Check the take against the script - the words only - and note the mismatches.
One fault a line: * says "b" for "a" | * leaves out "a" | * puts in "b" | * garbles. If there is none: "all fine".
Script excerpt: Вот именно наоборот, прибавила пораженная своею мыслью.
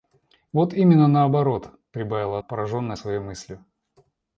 all fine